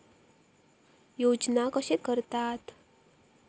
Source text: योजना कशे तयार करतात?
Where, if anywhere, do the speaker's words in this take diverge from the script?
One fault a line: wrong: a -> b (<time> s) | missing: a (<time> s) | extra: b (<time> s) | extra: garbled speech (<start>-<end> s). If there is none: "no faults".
missing: तयार (2.0 s)